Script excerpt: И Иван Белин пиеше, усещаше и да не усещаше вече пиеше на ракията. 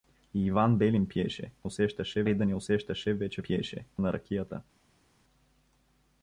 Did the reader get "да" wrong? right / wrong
right